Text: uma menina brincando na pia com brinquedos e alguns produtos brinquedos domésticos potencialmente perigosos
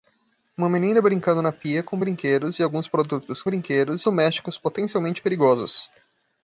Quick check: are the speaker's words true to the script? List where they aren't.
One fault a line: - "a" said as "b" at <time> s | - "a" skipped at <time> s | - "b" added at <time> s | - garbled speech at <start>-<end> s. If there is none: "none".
none